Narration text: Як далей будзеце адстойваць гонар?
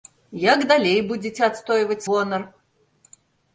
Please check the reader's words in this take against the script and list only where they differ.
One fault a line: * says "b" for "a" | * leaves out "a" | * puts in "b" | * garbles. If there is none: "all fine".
all fine